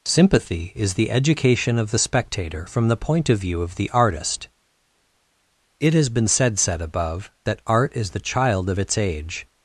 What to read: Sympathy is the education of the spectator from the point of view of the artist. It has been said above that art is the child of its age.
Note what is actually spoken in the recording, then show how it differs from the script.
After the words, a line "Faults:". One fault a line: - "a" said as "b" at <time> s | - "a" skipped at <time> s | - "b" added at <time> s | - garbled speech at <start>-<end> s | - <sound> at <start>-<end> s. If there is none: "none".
Sympathy is the education of the spectator from the point of view of the artist. It has been said said above that art is the child of its age.
Faults:
- "said" added at 6.6 s